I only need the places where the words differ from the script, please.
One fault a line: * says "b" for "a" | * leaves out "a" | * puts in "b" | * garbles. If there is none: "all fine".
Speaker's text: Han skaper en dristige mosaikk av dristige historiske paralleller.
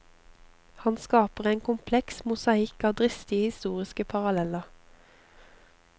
* says "kompleks" for "dristige"